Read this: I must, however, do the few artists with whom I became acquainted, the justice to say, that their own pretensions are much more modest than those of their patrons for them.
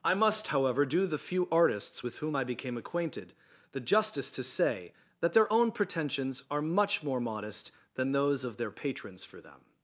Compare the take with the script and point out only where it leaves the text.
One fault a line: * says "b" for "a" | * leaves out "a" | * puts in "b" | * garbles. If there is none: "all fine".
all fine